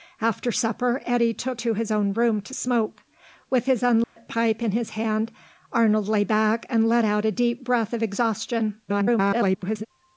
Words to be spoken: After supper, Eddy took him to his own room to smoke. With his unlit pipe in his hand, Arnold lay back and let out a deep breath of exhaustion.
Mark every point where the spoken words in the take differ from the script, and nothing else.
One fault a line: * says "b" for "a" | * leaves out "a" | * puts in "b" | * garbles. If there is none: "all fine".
* leaves out "him"
* garbles